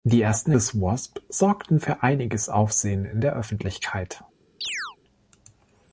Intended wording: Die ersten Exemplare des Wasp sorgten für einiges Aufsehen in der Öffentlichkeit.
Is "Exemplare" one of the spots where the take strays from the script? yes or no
yes